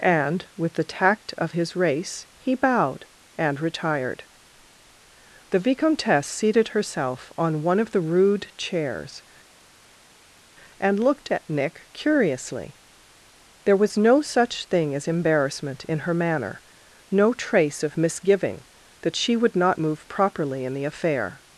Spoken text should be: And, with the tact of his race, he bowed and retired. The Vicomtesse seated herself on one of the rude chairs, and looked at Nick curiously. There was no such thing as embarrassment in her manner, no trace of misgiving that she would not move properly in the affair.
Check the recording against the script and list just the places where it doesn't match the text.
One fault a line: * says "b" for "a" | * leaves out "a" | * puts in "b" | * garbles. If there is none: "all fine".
all fine